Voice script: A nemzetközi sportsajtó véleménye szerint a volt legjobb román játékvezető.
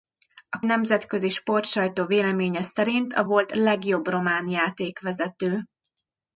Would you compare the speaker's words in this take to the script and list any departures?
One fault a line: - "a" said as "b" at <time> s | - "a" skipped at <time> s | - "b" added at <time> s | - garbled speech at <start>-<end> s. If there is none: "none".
none